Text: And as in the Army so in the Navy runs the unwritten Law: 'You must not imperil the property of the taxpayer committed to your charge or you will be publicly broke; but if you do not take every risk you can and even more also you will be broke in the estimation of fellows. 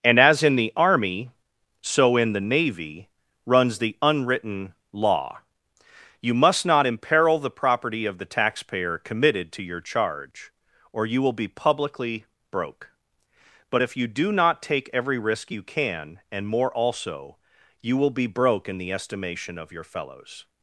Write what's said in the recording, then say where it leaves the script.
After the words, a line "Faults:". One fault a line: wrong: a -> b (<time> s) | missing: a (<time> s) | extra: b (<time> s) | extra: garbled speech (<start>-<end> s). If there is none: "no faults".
And as in the Army so in the Navy runs the unwritten Law: 'You must not imperil the property of the taxpayer committed to your charge or you will be publicly broke; but if you do not take every risk you can and more also you will be broke in the estimation of your fellows.
Faults:
missing: even (16.5 s)
extra: your (19.7 s)